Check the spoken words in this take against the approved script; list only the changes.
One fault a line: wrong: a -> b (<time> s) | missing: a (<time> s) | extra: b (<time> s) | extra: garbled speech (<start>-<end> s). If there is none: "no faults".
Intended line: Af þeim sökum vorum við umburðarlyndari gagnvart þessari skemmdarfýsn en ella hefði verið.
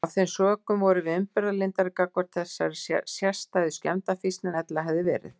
extra: sérstæðu (3.1 s)